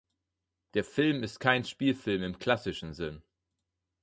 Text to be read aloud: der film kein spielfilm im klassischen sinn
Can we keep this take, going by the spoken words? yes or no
no